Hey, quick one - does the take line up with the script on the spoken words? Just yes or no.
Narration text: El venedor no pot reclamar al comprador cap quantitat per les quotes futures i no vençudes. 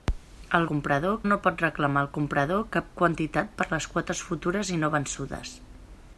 no